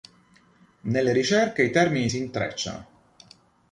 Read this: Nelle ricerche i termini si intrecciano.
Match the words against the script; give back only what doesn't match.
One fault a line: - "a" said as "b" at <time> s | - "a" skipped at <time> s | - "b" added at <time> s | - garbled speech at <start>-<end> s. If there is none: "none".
none